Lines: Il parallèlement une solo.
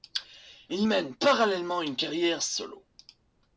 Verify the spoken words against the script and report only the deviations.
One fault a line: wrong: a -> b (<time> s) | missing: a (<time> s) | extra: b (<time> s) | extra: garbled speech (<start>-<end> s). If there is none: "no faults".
extra: mène (0.9 s)
extra: carrière (2.0 s)